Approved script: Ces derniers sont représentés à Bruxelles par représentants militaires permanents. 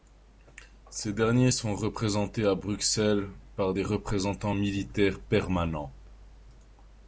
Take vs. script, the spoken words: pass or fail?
fail